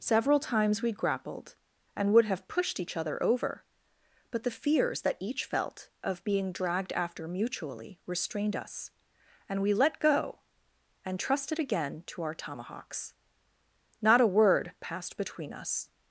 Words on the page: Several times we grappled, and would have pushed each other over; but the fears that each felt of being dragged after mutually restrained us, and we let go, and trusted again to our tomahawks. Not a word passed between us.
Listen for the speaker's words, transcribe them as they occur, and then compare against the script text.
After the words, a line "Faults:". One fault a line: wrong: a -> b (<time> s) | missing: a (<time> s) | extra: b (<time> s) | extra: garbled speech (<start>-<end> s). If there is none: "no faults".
Several times we grappled, and would have pushed each other over; but the fears that each felt of being dragged after mutually restrained us, and we let go, and trusted again to our tomahawks. Not a word passed between us.
Faults:
no faults